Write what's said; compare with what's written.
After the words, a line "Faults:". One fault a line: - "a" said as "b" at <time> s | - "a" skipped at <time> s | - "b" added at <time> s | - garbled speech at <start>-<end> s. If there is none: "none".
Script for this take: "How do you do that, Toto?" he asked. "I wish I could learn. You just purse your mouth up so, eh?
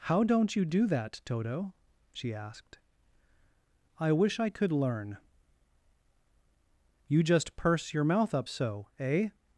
"How don't you do that, Toto?" she asked. "I wish I could learn. You just purse your mouth up so, eh?
Faults:
- "do" said as "don't" at 0.2 s
- "he" said as "she" at 2.1 s